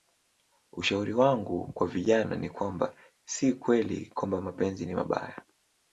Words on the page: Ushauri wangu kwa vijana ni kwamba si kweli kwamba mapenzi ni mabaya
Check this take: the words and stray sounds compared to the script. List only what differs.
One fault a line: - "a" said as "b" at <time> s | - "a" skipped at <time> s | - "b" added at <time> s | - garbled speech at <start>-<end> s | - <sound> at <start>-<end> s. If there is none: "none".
none